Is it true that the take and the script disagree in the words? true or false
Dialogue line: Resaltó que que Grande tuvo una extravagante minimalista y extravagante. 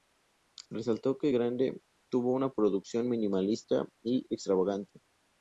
true